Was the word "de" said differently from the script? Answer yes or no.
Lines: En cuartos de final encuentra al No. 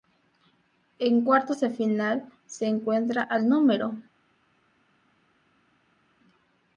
no